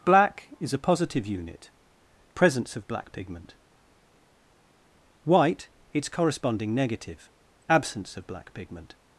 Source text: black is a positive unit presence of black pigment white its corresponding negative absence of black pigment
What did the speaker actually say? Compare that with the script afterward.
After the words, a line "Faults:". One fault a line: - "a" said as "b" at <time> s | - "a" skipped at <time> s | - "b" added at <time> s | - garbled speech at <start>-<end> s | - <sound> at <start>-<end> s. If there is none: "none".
black is a positive unit presence of black pigment white its corresponding negative absence of black pigment
Faults:
none